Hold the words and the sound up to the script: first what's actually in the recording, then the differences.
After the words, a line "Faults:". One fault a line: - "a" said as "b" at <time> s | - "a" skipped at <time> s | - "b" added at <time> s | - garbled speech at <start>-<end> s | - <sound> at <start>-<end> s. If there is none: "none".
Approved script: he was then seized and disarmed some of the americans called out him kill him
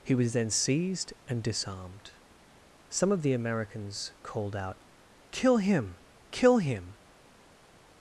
he was then seized and disarmed some of the americans called out kill him kill him
Faults:
- "kill" added at 5.3 s